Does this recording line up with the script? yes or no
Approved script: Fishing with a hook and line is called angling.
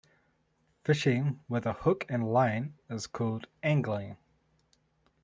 yes